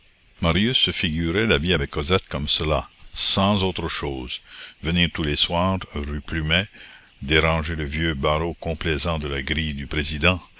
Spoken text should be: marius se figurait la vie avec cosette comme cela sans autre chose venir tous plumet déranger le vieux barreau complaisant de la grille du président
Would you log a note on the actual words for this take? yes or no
yes